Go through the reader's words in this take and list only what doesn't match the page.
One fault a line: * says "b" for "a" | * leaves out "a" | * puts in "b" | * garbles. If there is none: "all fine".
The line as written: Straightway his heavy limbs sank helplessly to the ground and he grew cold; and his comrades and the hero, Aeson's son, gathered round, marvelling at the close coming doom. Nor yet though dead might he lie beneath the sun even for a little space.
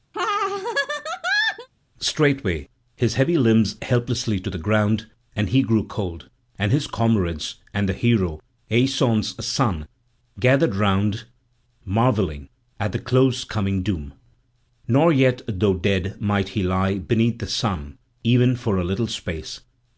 * leaves out "sank"